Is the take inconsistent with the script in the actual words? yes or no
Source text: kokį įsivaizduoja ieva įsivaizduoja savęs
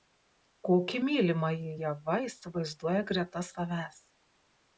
yes